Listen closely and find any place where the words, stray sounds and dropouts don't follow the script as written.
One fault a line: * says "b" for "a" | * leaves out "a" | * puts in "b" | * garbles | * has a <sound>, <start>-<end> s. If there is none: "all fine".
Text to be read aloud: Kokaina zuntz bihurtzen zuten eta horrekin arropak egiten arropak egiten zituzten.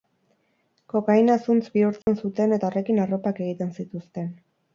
* has a dropout, 2.0-2.1 s
* leaves out "arropak egiten"